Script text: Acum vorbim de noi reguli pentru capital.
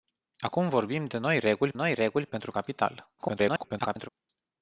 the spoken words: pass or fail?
fail